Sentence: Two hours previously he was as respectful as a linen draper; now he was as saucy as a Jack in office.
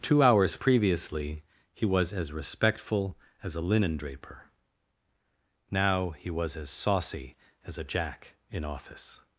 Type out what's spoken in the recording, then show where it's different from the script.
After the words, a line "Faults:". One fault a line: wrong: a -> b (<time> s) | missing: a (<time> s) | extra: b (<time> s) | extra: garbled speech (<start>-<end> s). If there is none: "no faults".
Two hours previously he was as respectful as a linen draper; now he was as saucy as a Jack in office.
Faults:
no faults